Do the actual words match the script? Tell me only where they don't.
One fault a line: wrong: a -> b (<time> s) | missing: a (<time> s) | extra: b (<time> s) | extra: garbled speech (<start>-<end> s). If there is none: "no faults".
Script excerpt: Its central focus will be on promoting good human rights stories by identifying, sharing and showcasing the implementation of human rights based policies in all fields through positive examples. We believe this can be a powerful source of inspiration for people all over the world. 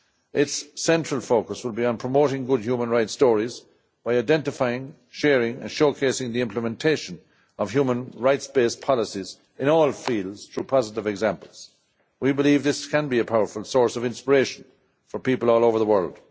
no faults